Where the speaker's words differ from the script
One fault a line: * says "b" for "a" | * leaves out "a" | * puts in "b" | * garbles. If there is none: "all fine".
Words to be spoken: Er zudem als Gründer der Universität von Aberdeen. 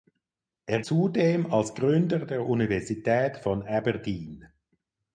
all fine